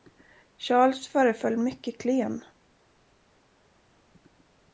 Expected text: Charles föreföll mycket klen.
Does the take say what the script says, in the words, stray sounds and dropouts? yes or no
yes